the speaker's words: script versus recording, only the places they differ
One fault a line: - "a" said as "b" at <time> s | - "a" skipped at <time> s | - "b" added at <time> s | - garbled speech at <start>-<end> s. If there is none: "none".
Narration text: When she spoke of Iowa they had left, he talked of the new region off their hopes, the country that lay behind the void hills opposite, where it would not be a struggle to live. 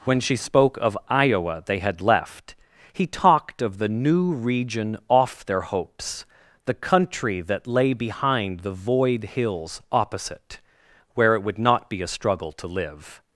none